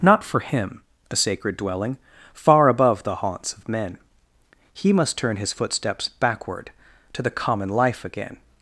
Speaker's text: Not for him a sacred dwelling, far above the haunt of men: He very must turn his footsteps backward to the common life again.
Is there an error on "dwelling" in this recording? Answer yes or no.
no